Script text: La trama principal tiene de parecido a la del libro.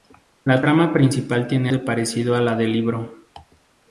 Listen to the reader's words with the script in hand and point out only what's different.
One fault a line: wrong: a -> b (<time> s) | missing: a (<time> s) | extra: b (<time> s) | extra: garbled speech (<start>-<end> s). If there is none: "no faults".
no faults